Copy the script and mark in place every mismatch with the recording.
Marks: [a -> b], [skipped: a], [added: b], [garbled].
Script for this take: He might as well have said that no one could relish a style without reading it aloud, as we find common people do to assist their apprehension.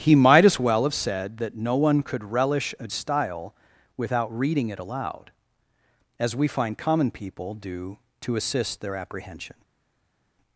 He might as well have said that no one could relish a style without reading it aloud, as we find common people do to assist their apprehension.